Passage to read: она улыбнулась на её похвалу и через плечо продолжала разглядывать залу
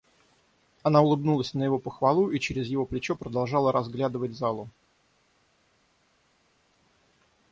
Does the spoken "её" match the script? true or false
false